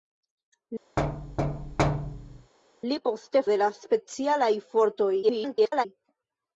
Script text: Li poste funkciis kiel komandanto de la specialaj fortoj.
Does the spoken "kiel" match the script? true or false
false